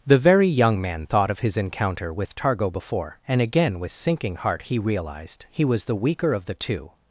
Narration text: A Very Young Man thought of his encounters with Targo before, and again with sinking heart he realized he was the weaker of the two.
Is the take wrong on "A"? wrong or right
wrong